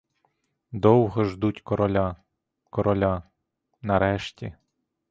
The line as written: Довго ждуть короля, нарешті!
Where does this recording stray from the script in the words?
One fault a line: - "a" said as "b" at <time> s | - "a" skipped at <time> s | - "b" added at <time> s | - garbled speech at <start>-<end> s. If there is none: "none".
- "короля" added at 2.7 s